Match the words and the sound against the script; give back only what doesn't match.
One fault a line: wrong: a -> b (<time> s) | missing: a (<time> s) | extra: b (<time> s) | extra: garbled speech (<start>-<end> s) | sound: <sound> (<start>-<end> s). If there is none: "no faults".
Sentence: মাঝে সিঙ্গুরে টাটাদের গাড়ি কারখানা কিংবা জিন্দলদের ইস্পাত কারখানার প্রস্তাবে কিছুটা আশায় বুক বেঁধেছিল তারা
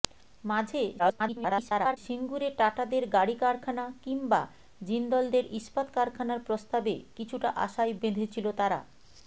extra: garbled speech (1.0-2.0 s)
missing: বুক (7.9 s)